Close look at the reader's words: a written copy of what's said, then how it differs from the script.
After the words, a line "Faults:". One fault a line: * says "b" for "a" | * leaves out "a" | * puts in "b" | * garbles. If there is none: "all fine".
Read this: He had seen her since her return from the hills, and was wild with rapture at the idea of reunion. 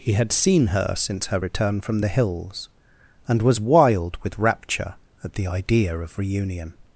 He had seen her since her return from the hills, and was wild with rapture at the idea of reunion.
Faults:
all fine